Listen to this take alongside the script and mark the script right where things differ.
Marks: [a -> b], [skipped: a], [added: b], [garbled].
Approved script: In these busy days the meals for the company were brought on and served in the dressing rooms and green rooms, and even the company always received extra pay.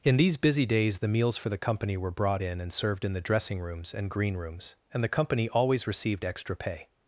In these busy days the meals for the company were brought [on -> in] and served in the dressing rooms and green rooms, and [skipped: even] the company always received extra pay.